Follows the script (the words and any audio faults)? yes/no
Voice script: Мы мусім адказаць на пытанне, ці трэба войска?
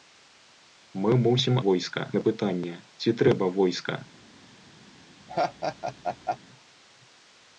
no